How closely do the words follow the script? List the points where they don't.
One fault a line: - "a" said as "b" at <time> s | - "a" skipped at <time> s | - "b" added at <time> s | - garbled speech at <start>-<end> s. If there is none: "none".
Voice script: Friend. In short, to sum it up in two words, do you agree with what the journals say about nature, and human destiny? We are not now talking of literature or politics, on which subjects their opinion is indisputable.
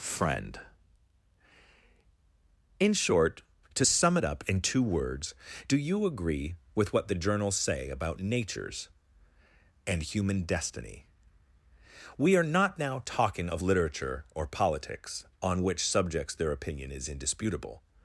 - "nature" said as "natures" at 8.2 s